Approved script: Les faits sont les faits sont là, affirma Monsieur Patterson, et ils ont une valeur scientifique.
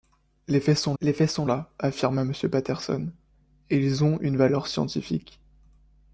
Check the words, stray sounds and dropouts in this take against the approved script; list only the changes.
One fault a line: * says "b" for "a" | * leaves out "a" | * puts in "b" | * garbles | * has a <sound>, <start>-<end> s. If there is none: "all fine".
all fine